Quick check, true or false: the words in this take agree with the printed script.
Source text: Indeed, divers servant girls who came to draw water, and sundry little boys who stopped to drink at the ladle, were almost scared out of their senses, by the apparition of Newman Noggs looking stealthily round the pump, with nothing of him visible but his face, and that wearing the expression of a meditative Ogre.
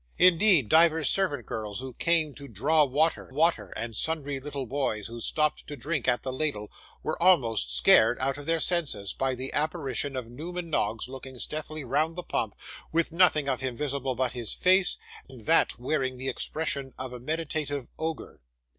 false